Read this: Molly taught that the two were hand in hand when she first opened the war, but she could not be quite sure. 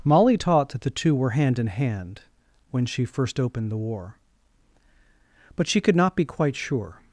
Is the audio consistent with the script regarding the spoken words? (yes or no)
yes